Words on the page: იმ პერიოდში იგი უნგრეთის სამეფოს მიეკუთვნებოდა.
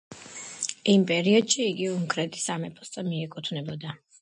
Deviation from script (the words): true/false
false